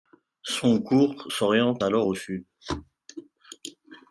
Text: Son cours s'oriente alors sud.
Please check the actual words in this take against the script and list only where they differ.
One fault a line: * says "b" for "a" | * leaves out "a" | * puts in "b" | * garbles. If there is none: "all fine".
* puts in "au"